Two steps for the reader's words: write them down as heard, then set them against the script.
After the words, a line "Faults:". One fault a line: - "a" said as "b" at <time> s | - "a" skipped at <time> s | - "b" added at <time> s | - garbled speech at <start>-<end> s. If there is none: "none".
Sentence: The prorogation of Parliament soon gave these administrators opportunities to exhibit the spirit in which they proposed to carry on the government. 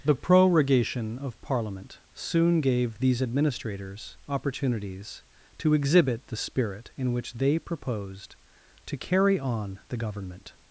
The prorogation of Parliament soon gave these administrators opportunities to exhibit the spirit in which they proposed to carry on the government.
Faults:
none